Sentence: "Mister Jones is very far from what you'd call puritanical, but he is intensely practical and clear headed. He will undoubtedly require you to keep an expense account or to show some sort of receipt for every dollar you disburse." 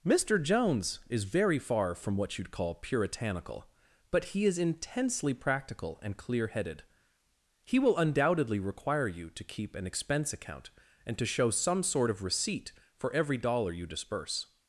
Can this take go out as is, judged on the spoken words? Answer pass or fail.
fail